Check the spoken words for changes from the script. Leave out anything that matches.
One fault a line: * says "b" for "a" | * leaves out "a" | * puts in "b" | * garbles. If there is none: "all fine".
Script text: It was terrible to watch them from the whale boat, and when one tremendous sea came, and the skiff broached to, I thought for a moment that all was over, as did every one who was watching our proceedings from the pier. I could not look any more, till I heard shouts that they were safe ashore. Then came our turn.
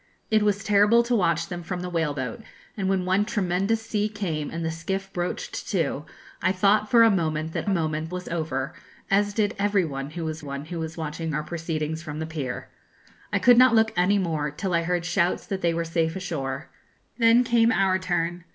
* says "moment" for "all"
* puts in "one who was"